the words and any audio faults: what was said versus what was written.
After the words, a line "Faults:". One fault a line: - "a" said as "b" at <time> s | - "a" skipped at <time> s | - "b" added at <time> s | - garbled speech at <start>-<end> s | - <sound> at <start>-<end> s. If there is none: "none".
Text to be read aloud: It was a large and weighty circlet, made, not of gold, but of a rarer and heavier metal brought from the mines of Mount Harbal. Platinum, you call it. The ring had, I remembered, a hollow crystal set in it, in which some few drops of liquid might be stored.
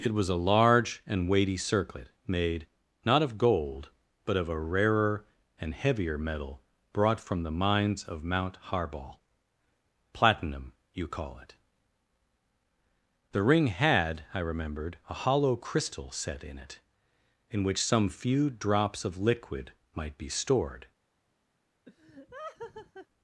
It was a large and weighty circlet, made, not of gold, but of a rarer and heavier metal brought from the mines of Mount Harbal. Platinum, you call it. The ring had, I remembered, a hollow crystal set in it, in which some few drops of liquid might be stored.
Faults:
- laugh at 21.8-23.1 s